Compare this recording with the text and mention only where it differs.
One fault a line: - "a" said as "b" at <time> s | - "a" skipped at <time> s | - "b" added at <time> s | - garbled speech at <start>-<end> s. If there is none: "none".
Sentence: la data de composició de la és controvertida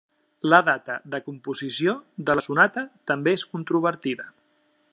- "sonata també" added at 2.4 s